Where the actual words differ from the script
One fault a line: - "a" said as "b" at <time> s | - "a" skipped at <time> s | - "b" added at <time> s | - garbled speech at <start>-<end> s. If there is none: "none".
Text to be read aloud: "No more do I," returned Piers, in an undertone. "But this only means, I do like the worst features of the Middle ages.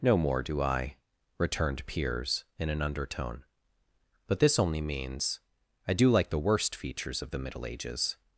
none